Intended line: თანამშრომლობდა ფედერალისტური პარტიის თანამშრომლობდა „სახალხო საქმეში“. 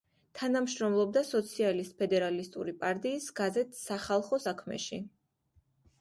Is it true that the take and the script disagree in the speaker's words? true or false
true